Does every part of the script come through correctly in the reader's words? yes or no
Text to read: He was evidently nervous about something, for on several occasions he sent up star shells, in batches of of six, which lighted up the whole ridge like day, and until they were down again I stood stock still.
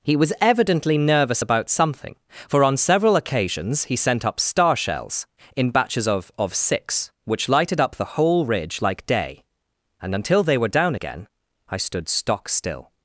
yes